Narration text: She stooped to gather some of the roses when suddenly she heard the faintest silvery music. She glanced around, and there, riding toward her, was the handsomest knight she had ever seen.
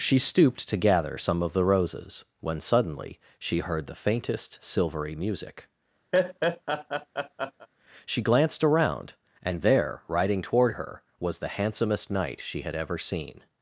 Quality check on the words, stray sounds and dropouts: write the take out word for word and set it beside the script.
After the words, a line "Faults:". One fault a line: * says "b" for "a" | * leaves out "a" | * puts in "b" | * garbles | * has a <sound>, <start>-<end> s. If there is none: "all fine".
She stooped to gather some of the roses when suddenly she heard the faintest silvery music. She glanced around, and there, riding toward her, was the handsomest knight she had ever seen.
Faults:
* has a laugh, 6.1-7.7 s